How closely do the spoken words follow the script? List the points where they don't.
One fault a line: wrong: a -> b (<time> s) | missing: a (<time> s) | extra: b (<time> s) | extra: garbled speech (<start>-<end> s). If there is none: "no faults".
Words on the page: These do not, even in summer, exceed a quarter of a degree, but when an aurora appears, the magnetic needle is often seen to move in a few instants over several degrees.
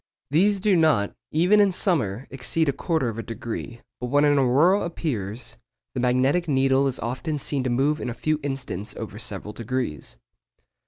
no faults